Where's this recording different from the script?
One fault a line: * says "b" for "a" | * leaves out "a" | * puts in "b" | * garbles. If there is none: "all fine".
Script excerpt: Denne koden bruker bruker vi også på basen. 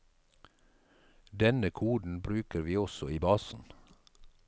* leaves out "bruker"
* says "i" for "på"